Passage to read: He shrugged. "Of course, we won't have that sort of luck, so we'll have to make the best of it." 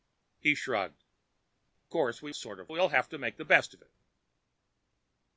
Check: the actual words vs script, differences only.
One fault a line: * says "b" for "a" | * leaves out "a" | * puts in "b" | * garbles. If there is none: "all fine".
* leaves out "Of"
* leaves out "won't have that"
* leaves out "luck so"